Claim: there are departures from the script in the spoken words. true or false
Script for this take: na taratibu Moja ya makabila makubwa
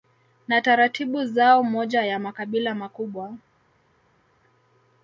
true